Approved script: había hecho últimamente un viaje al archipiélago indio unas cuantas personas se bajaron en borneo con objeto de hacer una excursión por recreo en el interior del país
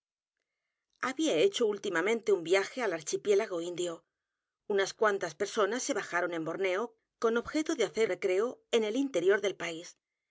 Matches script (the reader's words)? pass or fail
fail